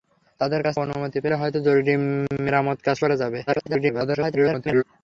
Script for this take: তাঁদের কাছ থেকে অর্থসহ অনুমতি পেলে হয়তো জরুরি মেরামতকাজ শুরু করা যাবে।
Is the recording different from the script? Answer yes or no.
yes